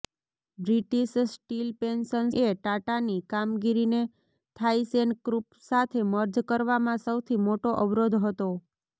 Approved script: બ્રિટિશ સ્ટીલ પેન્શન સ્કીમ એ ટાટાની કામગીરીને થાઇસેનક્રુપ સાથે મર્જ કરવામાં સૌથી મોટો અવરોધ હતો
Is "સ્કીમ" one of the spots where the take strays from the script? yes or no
yes